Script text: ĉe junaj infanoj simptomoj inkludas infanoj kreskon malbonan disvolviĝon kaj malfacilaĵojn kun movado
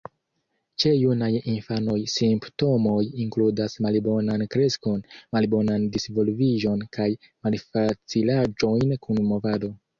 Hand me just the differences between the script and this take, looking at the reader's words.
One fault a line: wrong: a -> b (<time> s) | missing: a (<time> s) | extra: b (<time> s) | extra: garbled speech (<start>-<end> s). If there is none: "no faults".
wrong: infanoj -> malbonan (3.9 s)